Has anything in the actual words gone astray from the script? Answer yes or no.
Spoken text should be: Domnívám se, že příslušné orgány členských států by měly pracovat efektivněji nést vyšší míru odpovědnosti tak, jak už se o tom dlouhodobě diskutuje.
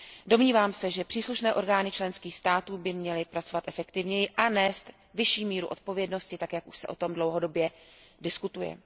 yes